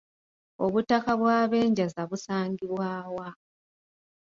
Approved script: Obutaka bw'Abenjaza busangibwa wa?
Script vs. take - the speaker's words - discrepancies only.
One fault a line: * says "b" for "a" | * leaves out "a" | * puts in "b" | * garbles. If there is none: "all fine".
all fine